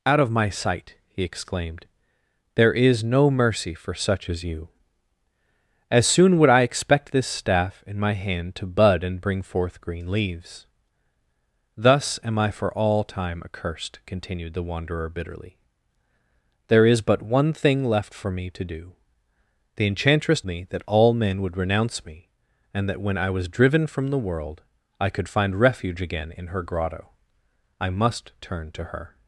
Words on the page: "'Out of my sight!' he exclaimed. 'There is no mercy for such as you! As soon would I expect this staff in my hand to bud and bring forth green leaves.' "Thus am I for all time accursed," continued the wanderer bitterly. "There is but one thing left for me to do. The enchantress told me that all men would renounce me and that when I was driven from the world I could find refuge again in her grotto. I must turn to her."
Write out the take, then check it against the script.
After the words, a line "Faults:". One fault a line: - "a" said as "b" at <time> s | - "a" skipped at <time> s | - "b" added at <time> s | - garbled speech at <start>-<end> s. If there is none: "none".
"'Out of my sight!' he exclaimed. 'There is no mercy for such as you! As soon would I expect this staff in my hand to bud and bring forth green leaves.' "Thus am I for all time accursed," continued the wanderer bitterly. "There is but one thing left for me to do. The enchantress me that all men would renounce me and that when I was driven from the world I could find refuge again in her grotto. I must turn to her."
Faults:
- "told" skipped at 20.4 s